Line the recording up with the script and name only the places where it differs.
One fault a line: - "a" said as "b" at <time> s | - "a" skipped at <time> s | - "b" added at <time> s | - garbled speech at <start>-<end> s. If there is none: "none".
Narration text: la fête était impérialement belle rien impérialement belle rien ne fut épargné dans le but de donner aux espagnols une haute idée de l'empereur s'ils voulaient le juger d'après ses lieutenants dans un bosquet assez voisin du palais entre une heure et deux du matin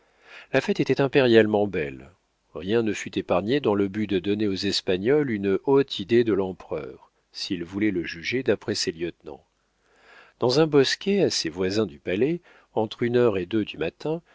- "impérialement belle rien" skipped at 2.8 s